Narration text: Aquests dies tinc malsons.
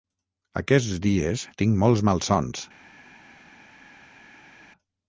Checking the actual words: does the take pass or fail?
fail